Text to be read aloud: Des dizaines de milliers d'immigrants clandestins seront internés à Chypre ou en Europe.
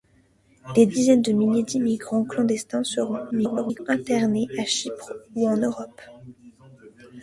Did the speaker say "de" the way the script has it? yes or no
yes